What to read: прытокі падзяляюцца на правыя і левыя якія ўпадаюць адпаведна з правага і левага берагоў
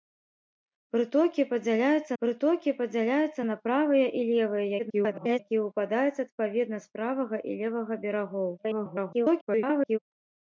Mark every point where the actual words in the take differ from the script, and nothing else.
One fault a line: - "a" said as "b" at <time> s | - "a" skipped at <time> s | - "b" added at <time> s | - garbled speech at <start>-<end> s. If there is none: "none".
- "прытокі падзяляюцца" added at 2.2 s
- garbled speech at 4.8-5.4 s
- garbled speech at 8.6-10.0 s